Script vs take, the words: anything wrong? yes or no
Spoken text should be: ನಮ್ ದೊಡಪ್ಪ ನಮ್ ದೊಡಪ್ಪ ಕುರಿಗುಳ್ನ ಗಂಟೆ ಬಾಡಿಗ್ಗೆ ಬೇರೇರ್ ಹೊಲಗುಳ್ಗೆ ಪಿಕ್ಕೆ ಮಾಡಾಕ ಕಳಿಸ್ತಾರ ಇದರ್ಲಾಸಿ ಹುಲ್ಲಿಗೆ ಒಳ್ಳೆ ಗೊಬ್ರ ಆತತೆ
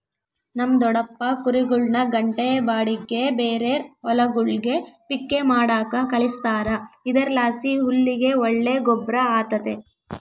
yes